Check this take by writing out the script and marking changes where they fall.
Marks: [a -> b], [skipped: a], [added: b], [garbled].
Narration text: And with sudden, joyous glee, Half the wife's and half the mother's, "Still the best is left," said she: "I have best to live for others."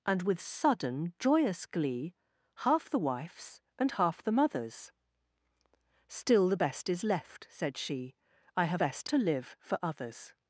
And with sudden, joyous glee, Half the wife's and half the mother's, "Still the best is left," said she: "I have best to live for others."